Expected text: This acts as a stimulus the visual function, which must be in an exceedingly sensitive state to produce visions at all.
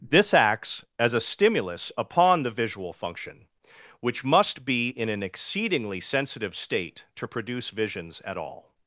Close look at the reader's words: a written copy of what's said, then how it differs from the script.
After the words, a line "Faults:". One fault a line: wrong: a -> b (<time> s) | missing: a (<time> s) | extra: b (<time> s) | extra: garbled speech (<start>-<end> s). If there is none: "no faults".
This acts as a stimulus upon the visual function, which must be in an exceedingly sensitive state to produce visions at all.
Faults:
extra: upon (1.9 s)